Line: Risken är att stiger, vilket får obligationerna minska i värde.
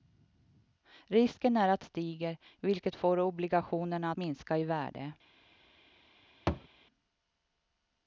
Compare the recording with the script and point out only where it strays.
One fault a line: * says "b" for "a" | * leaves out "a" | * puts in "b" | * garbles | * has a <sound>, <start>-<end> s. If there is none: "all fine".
* has a thud, 6.5-6.7 s